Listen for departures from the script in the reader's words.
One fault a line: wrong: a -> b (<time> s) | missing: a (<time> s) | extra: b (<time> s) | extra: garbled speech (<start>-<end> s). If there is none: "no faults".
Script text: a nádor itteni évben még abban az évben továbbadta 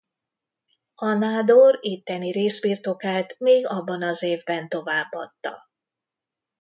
wrong: évben -> részbirtokát (2.3 s)